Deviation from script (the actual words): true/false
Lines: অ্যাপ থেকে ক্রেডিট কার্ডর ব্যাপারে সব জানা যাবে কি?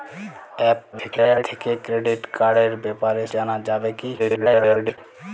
true